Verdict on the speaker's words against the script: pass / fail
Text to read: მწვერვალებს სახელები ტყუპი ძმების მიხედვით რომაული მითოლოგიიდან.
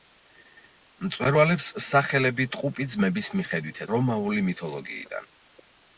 pass